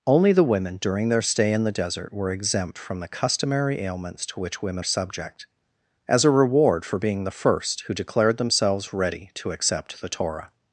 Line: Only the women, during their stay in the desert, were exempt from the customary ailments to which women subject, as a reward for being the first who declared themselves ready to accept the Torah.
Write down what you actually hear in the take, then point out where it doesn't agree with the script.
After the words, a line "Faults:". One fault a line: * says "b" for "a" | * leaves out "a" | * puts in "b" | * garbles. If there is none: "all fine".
Only the women, during their stay in the desert, were exempt from the customary ailments to which women subject, as a reward for being the first who declared themselves ready to accept the Torah.
Faults:
all fine